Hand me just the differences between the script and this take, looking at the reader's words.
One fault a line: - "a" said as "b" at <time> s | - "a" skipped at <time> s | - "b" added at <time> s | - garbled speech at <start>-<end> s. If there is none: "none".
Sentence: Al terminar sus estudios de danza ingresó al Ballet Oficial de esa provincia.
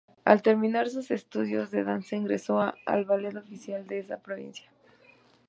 none